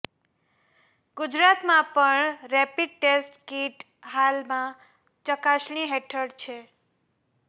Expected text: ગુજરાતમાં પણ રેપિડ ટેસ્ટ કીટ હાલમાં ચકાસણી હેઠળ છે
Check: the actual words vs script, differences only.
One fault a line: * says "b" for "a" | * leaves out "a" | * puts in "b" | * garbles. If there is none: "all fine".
all fine